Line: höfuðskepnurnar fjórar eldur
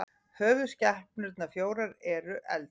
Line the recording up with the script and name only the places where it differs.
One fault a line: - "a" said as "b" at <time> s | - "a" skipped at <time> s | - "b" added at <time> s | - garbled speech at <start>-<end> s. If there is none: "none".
- "eru" added at 2.2 s